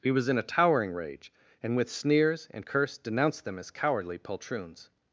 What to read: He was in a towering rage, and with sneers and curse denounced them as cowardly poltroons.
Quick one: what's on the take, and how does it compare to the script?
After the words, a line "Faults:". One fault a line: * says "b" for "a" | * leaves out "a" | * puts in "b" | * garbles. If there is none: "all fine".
He was in a towering rage, and with sneers and curse denounced them as cowardly poltroons.
Faults:
all fine